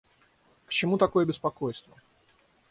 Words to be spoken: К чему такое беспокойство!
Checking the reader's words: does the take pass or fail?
pass